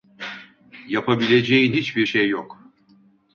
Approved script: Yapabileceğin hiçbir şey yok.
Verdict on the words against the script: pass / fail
pass